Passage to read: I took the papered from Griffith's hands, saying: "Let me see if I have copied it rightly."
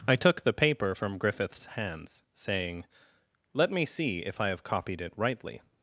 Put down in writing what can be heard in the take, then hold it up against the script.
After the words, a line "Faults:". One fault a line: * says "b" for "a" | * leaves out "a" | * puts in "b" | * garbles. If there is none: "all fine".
I took the paper from Griffith's hands, saying: "Let me see if I have copied it rightly."
Faults:
* says "paper" for "papered"